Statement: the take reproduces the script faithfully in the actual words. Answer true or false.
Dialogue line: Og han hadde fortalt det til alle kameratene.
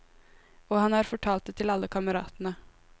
false